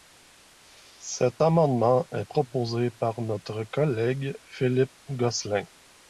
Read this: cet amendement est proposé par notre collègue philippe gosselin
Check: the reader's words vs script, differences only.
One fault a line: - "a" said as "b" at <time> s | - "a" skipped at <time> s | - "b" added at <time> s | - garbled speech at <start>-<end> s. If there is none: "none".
none